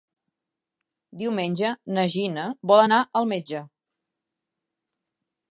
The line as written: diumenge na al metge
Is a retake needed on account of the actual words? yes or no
yes